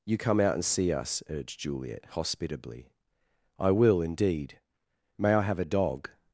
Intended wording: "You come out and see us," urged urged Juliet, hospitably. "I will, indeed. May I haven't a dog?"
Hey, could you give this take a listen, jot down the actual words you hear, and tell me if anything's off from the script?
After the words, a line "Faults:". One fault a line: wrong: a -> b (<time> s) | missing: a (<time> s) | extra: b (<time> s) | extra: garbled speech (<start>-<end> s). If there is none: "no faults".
"You come out and see us," urged Juliet, hospitably. "I will, indeed. May I have a dog?"
Faults:
missing: urged (1.6 s)
wrong: haven't -> have (5.4 s)